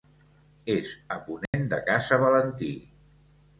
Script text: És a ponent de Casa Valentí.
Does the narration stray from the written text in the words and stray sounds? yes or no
yes